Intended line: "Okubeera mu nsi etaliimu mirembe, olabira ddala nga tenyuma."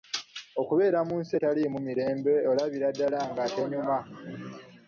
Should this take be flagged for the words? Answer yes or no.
no